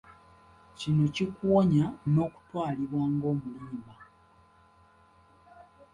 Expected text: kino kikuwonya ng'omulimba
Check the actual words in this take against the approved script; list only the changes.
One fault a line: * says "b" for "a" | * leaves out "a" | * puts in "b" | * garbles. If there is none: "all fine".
* puts in "n'okutwalibwa"